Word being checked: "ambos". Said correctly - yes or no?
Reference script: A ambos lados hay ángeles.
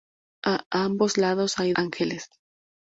yes